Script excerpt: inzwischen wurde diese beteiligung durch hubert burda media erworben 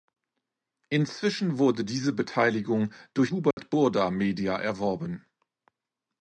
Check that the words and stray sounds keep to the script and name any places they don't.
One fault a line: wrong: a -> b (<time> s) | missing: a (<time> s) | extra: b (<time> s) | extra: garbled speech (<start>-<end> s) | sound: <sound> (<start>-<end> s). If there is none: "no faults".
sound: dropout (3.5-3.6 s)